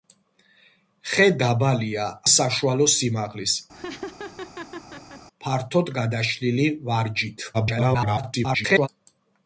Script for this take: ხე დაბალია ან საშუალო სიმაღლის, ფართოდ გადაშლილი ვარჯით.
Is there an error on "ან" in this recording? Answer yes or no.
yes